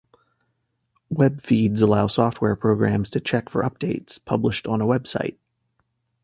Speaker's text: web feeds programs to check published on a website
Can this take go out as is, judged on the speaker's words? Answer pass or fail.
fail